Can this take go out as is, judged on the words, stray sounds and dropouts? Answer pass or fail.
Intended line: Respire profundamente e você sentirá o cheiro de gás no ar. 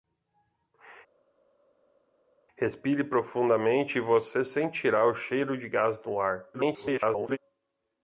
fail